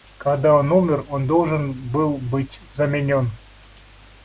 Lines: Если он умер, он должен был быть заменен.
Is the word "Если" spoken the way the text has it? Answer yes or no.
no